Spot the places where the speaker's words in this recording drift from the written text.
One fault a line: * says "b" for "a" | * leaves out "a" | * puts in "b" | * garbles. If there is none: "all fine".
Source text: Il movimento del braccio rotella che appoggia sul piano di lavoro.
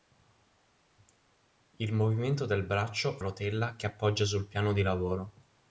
all fine